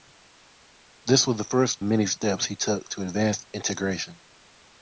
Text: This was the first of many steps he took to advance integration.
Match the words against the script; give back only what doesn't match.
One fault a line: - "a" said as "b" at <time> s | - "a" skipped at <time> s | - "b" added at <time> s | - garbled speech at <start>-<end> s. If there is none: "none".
- "of" skipped at 1.8 s